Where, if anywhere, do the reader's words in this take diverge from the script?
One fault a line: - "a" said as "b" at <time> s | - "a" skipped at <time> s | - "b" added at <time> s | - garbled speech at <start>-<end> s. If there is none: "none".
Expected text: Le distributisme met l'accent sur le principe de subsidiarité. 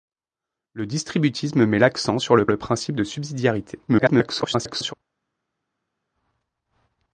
- "le" added at 2.5 s
- garbled speech at 3.9-4.9 s